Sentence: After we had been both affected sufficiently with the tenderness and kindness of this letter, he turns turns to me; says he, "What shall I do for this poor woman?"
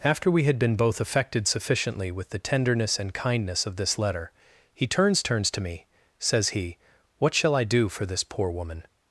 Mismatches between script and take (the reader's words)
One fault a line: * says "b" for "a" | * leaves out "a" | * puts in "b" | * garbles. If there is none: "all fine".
all fine